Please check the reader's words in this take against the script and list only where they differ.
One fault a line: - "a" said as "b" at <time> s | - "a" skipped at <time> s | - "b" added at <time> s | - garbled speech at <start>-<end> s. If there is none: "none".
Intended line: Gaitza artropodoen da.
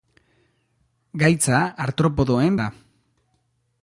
none